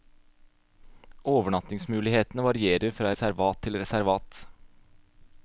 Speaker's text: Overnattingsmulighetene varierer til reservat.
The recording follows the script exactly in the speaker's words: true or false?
false